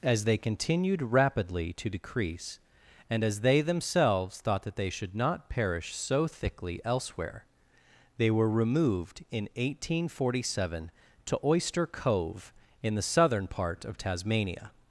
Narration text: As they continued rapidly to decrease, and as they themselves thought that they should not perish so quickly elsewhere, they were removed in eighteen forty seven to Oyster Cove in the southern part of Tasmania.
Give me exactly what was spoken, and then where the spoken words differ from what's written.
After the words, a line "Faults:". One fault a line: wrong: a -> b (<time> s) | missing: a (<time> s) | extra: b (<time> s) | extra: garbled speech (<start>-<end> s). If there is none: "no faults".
As they continued rapidly to decrease, and as they themselves thought that they should not perish so thickly elsewhere, they were removed in eighteen forty seven to Oyster Cove in the southern part of Tasmania.
Faults:
wrong: quickly -> thickly (6.2 s)